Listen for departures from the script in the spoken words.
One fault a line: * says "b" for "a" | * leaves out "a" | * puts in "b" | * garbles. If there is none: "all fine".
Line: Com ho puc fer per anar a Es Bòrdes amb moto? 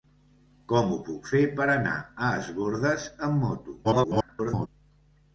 * garbles